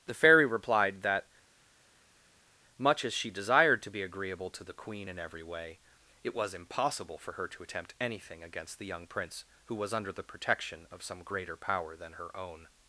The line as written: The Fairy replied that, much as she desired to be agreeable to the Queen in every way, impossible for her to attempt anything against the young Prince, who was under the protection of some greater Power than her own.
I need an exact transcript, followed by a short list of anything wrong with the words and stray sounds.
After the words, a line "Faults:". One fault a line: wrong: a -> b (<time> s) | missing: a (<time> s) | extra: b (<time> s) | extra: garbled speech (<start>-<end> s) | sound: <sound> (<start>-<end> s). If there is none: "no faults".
The Fairy replied that, much as she desired to be agreeable to the Queen in every way, it was impossible for her to attempt anything against the young Prince, who was under the protection of some greater Power than her own.
Faults:
extra: it was (6.2 s)